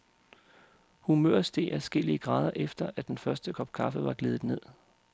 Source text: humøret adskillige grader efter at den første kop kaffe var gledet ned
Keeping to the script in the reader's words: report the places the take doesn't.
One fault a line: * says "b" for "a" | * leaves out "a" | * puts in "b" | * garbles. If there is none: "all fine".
* puts in "steg"